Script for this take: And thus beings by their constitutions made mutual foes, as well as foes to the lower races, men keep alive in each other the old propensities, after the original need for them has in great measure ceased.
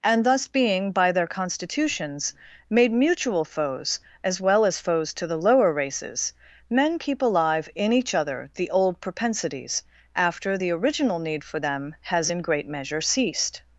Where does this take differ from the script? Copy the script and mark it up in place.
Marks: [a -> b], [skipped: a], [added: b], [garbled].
And thus [beings -> being] by their constitutions made mutual foes, as well as foes to the lower races, men keep alive in each other the old propensities, after the original need for them has in great measure ceased.